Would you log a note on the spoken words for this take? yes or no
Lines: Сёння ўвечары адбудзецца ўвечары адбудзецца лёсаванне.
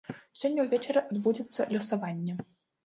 yes